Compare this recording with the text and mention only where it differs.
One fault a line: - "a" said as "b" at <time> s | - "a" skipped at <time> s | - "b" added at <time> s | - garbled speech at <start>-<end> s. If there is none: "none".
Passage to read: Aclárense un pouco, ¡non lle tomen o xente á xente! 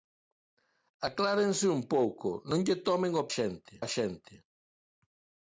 none